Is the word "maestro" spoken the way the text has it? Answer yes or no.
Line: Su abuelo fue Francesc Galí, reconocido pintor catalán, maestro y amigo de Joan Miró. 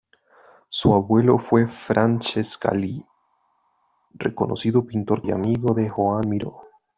no